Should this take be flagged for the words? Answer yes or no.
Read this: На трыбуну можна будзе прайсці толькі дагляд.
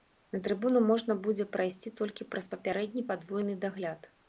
yes